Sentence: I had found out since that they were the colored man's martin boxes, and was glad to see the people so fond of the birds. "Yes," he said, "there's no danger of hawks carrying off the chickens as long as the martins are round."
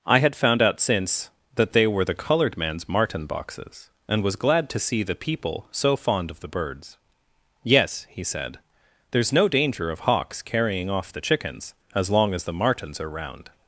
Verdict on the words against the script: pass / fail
pass